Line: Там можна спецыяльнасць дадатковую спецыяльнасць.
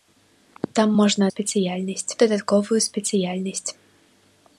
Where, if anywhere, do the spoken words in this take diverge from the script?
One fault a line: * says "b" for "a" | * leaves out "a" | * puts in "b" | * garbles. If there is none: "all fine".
all fine